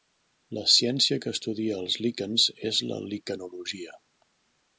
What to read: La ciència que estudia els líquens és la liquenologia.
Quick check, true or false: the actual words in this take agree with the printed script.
true